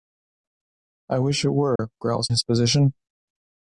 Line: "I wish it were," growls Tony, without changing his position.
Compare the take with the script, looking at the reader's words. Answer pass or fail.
fail